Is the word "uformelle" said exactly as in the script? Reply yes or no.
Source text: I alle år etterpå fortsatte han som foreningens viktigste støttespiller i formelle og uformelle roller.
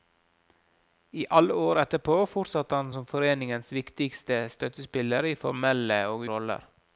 no